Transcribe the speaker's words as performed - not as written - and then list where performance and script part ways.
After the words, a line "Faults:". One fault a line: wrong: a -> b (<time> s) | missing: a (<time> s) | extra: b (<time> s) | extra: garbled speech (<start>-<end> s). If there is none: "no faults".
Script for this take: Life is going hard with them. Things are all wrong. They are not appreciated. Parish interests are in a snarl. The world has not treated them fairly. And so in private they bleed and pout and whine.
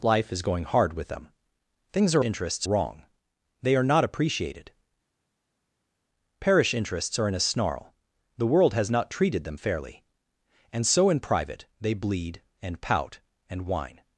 Life is going hard with them. Things are interests wrong. They are not appreciated. Parish interests are in a snarl. The world has not treated them fairly. And so in private they bleed and pout and whine.
Faults:
wrong: all -> interests (2.2 s)